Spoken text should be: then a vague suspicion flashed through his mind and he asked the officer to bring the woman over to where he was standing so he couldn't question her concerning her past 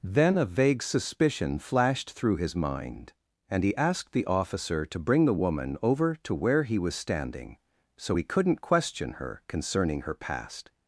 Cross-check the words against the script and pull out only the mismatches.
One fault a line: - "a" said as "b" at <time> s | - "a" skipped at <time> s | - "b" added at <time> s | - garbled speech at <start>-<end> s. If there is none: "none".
none